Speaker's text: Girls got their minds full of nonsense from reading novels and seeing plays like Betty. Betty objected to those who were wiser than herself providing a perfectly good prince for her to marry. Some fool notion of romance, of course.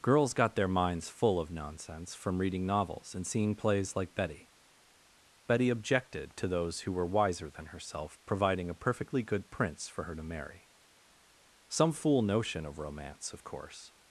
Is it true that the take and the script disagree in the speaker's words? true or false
false